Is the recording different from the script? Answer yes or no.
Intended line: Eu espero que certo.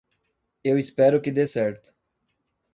yes